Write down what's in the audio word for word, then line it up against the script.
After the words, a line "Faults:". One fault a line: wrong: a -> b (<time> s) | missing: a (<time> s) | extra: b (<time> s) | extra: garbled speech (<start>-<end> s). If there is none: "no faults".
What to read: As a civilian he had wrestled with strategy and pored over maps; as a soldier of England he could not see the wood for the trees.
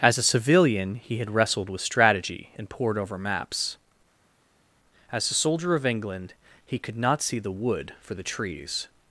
As a civilian he had wrestled with strategy and pored over maps; as a soldier of England he could not see the wood for the trees.
Faults:
no faults